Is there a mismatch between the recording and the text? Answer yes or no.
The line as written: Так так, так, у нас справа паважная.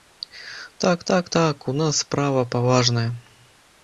no